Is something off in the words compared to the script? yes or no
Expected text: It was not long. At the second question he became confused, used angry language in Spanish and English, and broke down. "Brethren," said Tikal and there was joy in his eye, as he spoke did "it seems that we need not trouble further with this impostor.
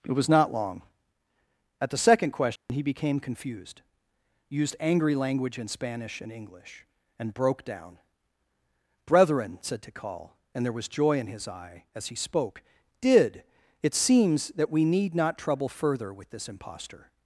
no